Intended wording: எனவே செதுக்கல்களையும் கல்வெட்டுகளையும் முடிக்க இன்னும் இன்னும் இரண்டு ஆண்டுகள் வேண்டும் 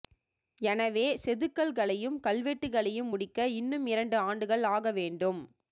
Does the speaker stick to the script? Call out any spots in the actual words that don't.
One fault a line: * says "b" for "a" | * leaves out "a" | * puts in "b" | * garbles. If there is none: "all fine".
* leaves out "இன்னும்"
* puts in "ஆக"